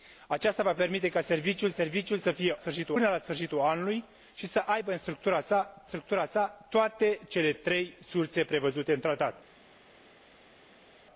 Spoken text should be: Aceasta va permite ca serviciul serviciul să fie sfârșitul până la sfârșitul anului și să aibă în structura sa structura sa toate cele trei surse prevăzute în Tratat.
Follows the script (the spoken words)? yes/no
yes